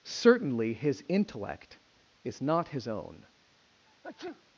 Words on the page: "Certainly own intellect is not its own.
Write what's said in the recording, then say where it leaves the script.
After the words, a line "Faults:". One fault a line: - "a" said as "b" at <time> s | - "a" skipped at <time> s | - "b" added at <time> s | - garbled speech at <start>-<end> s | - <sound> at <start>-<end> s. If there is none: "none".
"Certainly his intellect is not his own.
Faults:
- "own" said as "his" at 0.7 s
- "its" said as "his" at 2.7 s
- sneeze at 3.9-4.4 s